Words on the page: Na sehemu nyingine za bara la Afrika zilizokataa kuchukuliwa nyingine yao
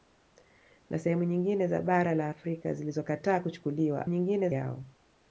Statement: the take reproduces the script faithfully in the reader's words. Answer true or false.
true